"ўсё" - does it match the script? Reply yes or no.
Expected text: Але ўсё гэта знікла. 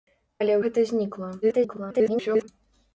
no